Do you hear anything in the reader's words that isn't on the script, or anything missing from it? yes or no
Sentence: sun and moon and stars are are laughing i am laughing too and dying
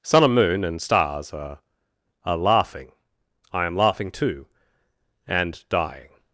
no